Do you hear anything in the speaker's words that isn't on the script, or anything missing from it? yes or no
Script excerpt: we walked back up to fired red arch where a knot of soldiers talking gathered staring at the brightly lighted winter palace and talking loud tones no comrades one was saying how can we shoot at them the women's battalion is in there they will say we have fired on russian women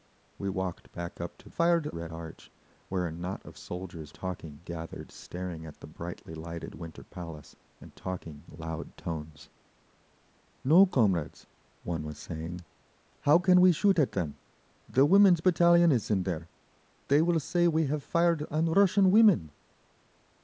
no